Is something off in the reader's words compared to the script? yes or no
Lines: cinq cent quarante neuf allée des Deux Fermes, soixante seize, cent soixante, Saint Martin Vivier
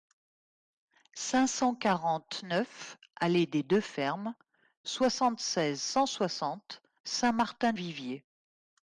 no